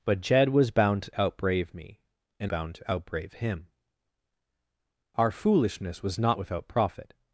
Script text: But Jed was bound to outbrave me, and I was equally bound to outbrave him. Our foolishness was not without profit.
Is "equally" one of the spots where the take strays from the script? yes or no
yes